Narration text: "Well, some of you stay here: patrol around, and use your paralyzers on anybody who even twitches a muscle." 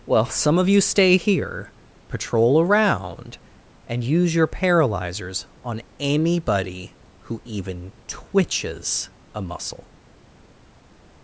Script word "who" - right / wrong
right